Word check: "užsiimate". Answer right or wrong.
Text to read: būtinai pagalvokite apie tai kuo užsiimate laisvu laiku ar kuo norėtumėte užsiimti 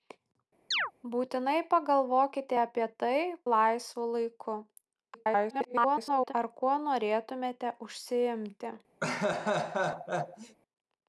wrong